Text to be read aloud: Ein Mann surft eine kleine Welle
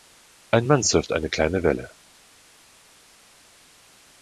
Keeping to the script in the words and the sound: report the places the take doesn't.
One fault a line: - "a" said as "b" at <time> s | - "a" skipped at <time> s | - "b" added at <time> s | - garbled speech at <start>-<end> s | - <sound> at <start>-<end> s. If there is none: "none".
none